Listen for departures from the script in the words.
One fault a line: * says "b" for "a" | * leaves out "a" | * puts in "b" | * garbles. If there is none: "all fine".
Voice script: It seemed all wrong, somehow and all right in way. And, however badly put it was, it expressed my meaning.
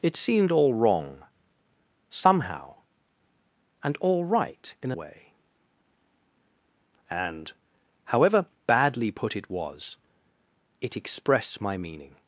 all fine